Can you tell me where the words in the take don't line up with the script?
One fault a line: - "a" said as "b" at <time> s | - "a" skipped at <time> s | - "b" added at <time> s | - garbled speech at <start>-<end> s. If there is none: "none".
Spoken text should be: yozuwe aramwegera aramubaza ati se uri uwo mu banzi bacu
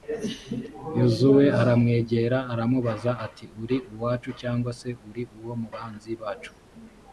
- "uri uwacu cyangwa" added at 3.6 s